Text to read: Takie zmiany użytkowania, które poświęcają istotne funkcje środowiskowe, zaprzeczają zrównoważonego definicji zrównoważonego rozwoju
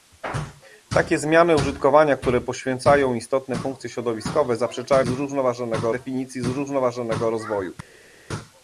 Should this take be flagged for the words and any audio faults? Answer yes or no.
no